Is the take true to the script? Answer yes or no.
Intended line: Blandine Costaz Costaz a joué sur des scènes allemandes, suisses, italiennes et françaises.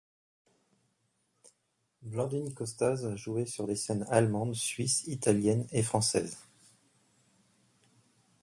no